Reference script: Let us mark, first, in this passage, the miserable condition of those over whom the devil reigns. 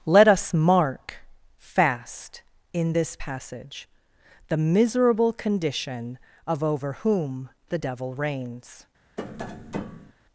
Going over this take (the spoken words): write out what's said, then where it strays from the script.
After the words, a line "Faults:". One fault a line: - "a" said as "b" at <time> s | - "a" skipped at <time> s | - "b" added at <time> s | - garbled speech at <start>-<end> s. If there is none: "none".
Let us mark, fast, in this passage, the miserable condition of over whom the devil reigns.
Faults:
- "first" said as "fast" at 1.6 s
- "those" skipped at 6.6 s